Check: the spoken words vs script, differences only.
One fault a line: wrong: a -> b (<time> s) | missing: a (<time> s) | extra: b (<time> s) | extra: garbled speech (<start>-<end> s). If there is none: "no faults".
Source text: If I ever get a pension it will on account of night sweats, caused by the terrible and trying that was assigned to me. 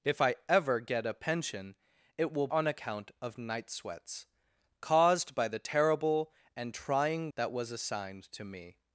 no faults